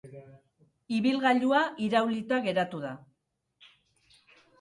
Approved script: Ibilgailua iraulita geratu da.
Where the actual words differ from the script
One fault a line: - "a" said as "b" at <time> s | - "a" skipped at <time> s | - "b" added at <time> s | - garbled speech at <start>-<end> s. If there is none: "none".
none